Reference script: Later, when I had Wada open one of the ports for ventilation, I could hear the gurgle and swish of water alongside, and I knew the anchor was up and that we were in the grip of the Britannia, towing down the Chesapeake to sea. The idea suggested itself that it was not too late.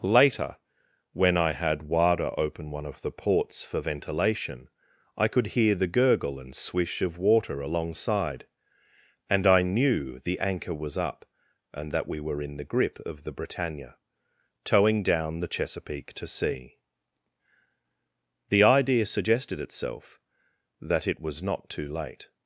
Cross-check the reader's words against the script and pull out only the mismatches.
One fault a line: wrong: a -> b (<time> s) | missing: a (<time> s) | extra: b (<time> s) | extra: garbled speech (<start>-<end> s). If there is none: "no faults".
no faults